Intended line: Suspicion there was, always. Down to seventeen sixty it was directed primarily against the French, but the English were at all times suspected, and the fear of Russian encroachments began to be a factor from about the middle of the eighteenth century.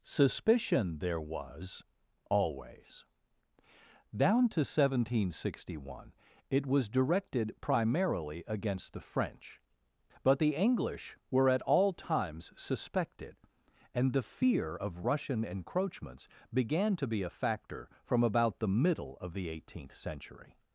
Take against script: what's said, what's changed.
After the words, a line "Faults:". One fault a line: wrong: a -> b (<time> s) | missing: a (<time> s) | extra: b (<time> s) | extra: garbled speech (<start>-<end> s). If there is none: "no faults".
Suspicion there was, always. Down to seventeen sixty one it was directed primarily against the French, but the English were at all times suspected, and the fear of Russian encroachments began to be a factor from about the middle of the eighteenth century.
Faults:
extra: one (5.8 s)